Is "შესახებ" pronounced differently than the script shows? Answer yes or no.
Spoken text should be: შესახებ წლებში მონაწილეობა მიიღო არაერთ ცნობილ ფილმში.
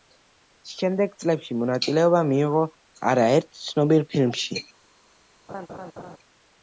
yes